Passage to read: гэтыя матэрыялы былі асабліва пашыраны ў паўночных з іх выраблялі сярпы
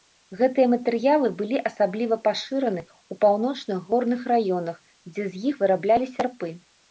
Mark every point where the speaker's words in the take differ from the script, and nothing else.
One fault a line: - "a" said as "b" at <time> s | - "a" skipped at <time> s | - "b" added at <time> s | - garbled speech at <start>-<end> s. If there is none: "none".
- "горных раёнах дзе" added at 3.9 s